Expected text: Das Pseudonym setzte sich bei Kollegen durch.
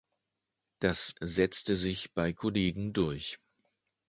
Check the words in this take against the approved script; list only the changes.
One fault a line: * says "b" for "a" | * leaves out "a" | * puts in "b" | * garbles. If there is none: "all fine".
* leaves out "Pseudonym"